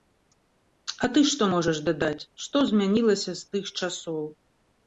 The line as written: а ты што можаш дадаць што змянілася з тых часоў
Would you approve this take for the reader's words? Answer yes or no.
yes